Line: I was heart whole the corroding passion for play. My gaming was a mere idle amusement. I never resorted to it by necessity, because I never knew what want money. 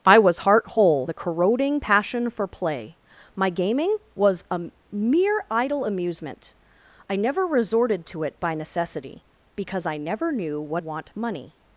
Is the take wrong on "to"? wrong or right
right